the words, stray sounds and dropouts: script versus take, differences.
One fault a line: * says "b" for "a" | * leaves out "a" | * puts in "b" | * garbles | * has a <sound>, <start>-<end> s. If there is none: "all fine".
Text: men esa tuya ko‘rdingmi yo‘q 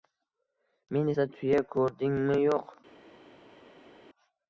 all fine